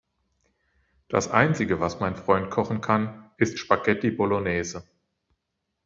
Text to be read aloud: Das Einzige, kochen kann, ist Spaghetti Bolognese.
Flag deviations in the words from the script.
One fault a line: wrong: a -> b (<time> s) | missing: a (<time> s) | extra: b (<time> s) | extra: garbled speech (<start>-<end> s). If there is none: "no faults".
extra: was mein Freund (1.8 s)